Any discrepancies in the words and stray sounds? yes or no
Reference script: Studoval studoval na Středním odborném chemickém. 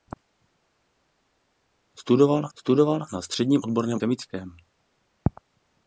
no